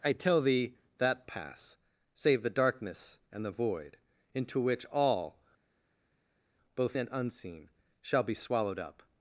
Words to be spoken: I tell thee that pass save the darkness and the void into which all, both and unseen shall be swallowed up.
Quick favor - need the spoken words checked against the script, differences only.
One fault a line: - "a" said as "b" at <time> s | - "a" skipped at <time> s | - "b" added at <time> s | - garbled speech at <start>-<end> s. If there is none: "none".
none